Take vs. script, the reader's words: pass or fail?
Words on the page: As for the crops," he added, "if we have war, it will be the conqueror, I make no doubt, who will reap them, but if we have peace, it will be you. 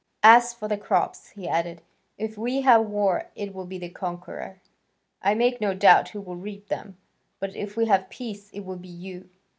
pass